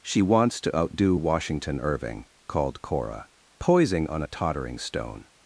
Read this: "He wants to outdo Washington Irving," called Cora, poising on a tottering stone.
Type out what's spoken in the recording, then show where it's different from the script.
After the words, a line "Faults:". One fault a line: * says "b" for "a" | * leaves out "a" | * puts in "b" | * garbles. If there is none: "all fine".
"She wants to outdo Washington Irving," called Cora, poising on a tottering stone.
Faults:
* says "She" for "He"